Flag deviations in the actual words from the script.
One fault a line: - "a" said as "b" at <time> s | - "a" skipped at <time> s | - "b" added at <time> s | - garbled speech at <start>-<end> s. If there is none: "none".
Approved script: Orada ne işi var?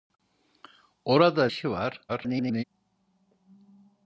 - "ne" skipped at 1.5 s
- garbled speech at 2.1-2.6 s